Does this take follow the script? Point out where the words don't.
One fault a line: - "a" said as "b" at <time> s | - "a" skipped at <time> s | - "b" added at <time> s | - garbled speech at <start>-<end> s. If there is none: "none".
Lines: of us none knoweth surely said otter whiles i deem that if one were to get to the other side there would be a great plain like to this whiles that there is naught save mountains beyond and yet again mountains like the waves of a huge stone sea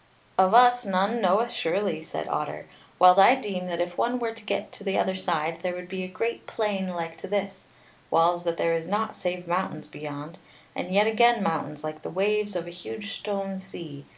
none